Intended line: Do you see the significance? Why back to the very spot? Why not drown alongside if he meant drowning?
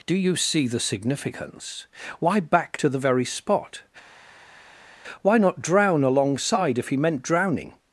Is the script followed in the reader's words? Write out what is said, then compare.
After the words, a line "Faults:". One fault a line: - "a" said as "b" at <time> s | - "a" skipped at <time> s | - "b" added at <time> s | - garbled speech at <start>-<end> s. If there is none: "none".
Do you see the significance? Why back to the very spot? Why not drown alongside if he meant drowning?
Faults:
none